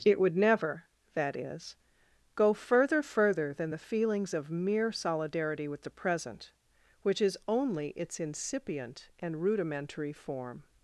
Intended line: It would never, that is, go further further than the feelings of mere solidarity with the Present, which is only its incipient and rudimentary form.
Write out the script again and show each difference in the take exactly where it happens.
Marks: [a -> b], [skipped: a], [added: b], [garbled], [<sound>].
It would never, that is, go further further than the feelings of mere solidarity with the Present, which is only its incipient and rudimentary form.